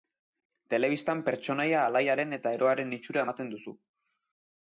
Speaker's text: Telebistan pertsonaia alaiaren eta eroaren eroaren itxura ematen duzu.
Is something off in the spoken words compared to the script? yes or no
yes